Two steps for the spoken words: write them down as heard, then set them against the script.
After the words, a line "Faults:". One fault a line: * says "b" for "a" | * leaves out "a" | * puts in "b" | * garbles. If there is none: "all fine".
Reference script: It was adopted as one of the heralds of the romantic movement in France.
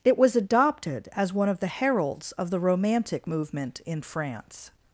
It was adopted as one of the heralds of the romantic movement in France.
Faults:
all fine